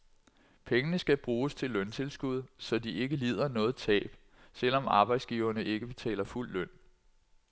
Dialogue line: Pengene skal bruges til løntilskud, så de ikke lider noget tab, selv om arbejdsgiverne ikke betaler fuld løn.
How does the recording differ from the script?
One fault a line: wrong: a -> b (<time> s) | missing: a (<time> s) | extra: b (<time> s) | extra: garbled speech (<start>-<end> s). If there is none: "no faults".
no faults